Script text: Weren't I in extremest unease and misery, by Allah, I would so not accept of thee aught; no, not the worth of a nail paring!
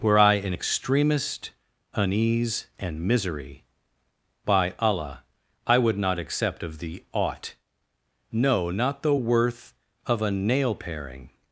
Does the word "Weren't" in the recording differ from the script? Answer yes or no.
yes